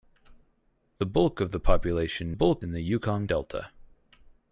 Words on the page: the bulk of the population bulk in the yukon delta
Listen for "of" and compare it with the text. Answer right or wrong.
right